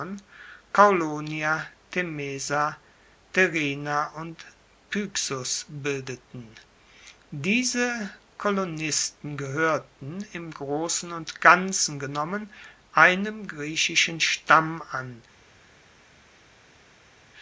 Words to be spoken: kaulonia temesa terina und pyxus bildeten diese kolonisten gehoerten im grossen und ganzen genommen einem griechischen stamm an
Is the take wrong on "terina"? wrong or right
right